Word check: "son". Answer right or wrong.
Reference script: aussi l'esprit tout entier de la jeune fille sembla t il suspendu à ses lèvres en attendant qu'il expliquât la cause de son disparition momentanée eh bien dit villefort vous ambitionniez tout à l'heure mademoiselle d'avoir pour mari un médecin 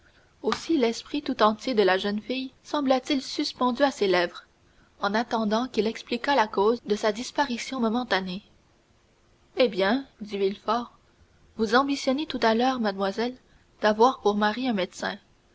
wrong